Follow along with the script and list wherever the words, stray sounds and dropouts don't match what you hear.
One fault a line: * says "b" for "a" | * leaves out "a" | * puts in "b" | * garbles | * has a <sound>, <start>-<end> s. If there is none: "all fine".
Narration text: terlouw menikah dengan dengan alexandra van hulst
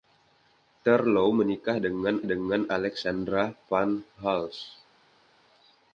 all fine